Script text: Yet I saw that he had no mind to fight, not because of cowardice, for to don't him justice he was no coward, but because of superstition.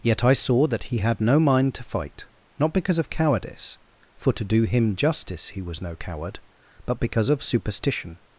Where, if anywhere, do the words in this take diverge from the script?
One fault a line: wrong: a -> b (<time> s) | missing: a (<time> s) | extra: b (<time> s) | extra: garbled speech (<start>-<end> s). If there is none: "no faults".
wrong: don't -> do (4.4 s)